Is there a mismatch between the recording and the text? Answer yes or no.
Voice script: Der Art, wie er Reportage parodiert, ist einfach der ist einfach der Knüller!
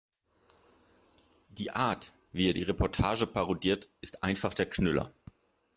yes